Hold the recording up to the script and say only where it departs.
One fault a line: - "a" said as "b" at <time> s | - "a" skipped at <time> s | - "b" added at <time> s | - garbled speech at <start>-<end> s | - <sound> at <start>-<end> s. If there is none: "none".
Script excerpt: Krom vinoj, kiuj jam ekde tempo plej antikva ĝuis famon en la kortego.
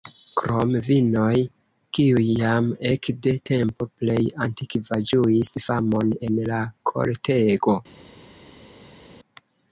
none